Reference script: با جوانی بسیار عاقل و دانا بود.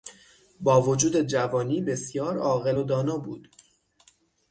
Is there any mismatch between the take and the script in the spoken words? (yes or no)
yes